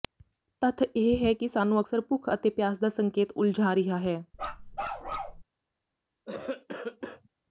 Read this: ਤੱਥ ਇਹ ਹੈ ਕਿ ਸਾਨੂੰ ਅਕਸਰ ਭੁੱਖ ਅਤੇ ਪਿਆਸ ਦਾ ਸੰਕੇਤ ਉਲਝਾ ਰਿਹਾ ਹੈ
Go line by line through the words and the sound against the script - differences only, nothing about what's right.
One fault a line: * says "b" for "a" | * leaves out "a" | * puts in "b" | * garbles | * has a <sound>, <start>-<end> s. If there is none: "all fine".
* has a bark, 4.3-5.4 s
* has a cough, 6.3-7.3 s